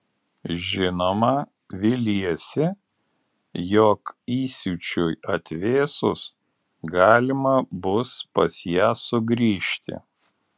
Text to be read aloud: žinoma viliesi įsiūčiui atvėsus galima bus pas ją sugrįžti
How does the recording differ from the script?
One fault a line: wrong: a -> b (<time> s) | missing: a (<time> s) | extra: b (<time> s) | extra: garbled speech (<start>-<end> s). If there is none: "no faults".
extra: jog (3.7 s)